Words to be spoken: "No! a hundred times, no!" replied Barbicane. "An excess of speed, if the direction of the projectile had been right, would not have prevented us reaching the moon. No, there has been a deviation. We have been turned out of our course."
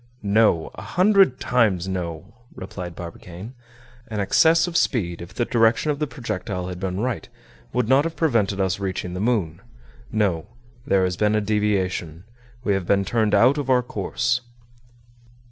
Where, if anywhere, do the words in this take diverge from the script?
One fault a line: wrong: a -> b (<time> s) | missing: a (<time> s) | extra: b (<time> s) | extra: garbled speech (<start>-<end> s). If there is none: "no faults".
no faults